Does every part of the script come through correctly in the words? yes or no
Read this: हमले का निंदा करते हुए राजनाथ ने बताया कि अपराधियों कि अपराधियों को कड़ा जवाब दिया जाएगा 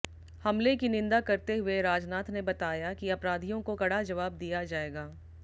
no